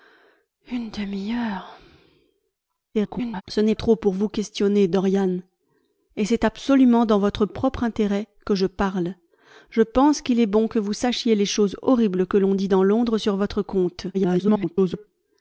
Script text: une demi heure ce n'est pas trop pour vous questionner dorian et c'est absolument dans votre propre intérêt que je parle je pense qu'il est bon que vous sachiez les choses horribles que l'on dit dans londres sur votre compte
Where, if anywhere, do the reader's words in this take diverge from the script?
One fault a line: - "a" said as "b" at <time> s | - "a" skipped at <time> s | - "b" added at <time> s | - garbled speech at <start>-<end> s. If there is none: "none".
- garbled speech at 2.9-3.4 s
- "pas" skipped at 3.7 s
- garbled speech at 14.1-15.1 s